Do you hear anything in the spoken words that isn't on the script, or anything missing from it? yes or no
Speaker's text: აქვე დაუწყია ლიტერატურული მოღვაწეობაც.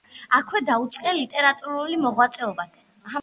no